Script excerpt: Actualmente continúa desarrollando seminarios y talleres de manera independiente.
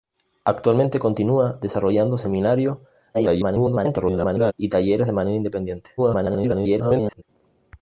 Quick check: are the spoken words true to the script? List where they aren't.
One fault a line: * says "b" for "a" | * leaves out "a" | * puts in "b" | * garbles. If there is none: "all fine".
* garbles
* garbles